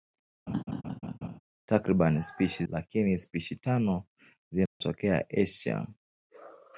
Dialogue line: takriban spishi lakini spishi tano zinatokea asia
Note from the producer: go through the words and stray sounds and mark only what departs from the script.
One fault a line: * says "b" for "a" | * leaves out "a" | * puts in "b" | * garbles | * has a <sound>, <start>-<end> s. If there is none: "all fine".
* has a laugh, 0.5-1.4 s
* has a dropout, 4.7-4.8 s